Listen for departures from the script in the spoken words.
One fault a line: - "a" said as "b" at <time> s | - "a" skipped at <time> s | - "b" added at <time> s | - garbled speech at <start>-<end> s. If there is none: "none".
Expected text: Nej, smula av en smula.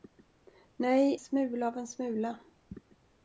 none